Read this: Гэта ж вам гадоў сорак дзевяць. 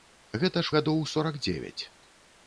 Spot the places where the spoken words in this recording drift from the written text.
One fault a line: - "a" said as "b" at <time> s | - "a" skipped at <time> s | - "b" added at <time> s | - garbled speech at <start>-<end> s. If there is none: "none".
- "вам" skipped at 0.7 s